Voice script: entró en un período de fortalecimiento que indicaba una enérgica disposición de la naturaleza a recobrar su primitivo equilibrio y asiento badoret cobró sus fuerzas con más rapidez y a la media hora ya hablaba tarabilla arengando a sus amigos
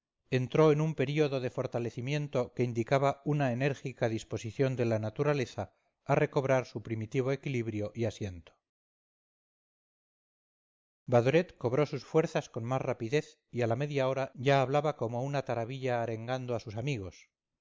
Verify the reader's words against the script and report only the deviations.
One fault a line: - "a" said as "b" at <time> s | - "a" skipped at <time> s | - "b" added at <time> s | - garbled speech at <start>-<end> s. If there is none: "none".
- "como una" added at 14.9 s